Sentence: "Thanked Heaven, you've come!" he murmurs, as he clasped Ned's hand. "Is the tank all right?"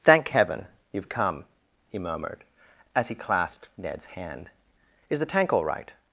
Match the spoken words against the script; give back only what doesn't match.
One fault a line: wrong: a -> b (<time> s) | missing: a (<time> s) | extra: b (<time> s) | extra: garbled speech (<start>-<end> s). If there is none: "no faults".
wrong: Thanked -> Thank (0.0 s)
wrong: murmurs -> murmured (2.0 s)